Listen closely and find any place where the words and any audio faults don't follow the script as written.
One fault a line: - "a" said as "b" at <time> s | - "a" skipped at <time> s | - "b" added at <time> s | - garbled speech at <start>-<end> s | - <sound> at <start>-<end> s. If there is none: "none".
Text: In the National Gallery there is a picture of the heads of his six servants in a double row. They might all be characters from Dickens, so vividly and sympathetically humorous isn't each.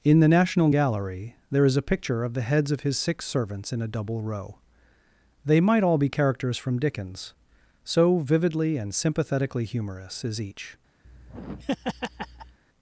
- "isn't" said as "is" at 10.2 s
- laugh at 11.0-12.6 s